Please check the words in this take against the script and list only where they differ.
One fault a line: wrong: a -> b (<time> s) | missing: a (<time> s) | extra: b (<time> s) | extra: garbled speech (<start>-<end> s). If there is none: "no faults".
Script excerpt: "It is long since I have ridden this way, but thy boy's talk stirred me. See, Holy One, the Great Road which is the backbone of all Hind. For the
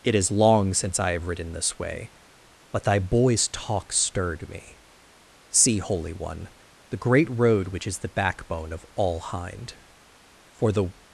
no faults